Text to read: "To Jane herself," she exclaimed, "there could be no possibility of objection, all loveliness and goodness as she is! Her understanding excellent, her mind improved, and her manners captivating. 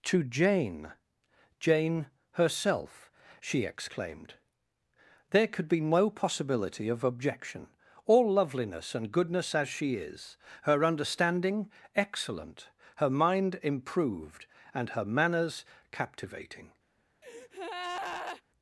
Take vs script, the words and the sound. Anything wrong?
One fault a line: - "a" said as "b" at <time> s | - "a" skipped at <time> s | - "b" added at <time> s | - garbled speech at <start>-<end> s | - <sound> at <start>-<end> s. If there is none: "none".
- "Jane" added at 1.6 s
- breath at 17.2-18.4 s